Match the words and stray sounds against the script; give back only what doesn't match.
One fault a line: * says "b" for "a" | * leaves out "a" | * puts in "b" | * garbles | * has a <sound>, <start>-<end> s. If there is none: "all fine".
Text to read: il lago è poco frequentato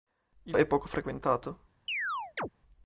* leaves out "lago"
* has a chirp, 1.9-2.5 s